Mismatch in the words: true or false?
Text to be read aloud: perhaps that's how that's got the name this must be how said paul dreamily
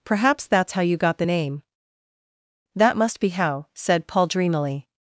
true